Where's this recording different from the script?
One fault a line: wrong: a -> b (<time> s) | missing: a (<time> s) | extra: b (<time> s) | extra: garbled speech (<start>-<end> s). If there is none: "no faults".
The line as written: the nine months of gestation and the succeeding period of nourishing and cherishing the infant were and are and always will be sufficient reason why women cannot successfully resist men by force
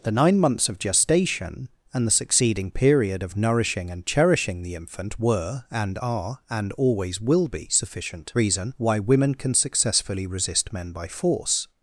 wrong: cannot -> can (9.3 s)